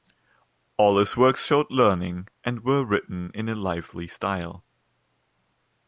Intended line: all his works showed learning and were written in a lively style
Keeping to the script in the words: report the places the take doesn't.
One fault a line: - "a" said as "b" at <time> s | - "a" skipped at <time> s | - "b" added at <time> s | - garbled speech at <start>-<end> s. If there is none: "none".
none